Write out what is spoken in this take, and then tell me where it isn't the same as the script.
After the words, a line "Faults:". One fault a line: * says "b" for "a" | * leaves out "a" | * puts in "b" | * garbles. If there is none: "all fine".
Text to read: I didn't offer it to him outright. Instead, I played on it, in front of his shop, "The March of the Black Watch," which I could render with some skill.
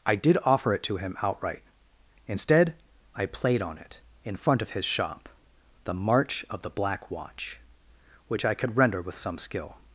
I did offer it to him outright. Instead, I played on it, in front of his shop, "The March of the Black Watch," which I could render with some skill.
Faults:
* says "did" for "didn't"